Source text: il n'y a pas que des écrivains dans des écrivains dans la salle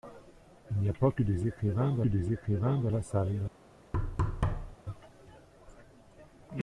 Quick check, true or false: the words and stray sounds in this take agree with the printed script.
false